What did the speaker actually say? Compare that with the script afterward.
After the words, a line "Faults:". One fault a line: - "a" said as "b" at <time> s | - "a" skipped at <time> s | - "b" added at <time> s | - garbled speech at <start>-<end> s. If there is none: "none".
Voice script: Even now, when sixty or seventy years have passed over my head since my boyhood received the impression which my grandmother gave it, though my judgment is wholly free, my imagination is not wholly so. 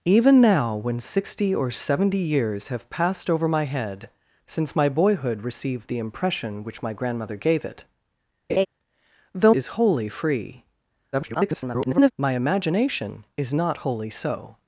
Even now, when sixty or seventy years have passed over my head since my boyhood received the impression which my grandmother gave it, though is wholly free, [garbled] my imagination is not wholly so.
Faults:
- "my judgment" skipped at 9.5 s
- garbled speech at 11.1-12.1 s